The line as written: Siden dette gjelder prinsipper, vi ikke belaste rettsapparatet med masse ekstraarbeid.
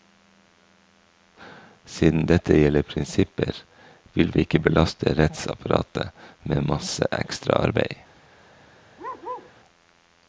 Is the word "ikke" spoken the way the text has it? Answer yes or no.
yes